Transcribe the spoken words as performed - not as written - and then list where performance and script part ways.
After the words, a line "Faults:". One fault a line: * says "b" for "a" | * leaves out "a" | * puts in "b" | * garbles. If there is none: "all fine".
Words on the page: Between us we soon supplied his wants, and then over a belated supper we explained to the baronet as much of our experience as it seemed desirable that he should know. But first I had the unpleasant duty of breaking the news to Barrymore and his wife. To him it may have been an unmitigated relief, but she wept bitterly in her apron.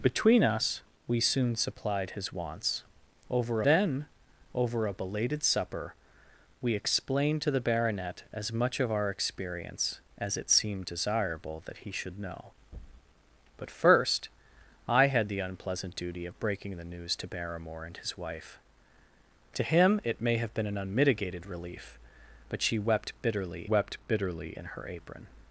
Between us we soon supplied his wants, over then over a belated supper we explained to the baronet as much of our experience as it seemed desirable that he should know. But first I had the unpleasant duty of breaking the news to Barrymore and his wife. To him it may have been an unmitigated relief, but she wept bitterly wept bitterly in her apron.
Faults:
* says "over" for "and"
* puts in "wept bitterly"